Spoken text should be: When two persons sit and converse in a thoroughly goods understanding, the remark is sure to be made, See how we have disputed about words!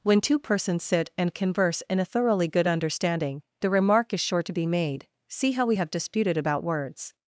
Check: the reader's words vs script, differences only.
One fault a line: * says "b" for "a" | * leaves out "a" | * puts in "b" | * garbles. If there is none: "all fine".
* says "good" for "goods"